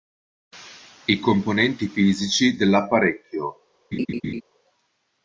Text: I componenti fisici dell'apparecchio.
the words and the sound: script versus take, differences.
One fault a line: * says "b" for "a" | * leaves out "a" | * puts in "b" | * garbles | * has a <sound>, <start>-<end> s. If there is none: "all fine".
* has a laugh, 3.9-4.4 s